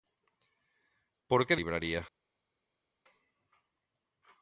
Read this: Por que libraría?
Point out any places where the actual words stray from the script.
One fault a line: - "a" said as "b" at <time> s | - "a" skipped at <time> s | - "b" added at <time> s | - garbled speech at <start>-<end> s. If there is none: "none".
none